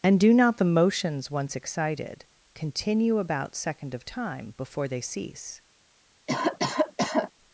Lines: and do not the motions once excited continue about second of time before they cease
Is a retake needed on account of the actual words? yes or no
no